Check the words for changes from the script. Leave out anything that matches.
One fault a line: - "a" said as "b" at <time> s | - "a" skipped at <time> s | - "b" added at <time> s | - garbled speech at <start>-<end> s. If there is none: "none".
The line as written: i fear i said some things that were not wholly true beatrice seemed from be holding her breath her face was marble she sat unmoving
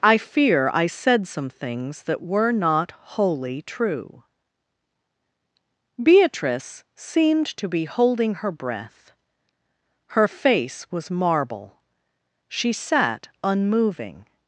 - "from" said as "to" at 7.6 s